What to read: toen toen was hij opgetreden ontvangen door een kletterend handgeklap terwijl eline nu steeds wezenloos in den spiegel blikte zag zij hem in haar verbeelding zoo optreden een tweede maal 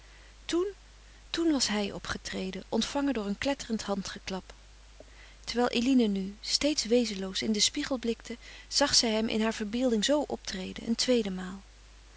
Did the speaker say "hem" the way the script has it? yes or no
yes